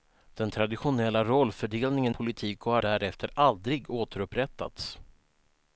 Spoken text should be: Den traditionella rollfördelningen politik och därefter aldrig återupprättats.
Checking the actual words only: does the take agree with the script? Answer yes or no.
yes